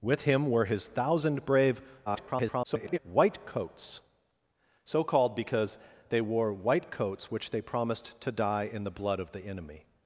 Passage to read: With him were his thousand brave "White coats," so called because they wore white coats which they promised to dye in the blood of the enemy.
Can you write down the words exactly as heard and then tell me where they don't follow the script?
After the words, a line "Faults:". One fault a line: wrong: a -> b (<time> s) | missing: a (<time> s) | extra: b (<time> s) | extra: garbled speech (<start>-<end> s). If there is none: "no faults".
With him were his thousand brave [garbled] "White coats," so called because they wore white coats which they promised to dye in the blood of the enemy.
Faults:
extra: garbled speech (2.1-3.0 s)